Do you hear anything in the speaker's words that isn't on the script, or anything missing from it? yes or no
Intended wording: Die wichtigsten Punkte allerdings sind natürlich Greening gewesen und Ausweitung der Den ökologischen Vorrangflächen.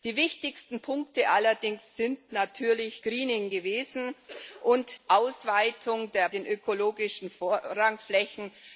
no